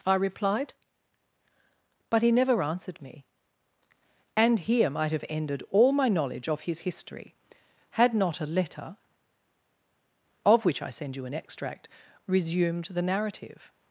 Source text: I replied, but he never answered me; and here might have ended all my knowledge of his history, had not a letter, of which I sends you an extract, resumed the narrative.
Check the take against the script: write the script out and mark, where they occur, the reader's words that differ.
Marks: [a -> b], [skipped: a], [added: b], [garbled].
I replied, but he never answered me; and here might have ended all my knowledge of his history, had not a letter, of which I [sends -> send] you an extract, resumed the narrative.